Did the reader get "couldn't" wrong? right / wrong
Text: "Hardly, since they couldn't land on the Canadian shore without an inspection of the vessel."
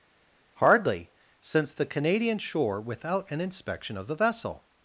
wrong